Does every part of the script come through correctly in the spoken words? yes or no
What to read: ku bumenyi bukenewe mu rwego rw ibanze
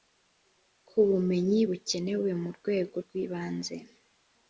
yes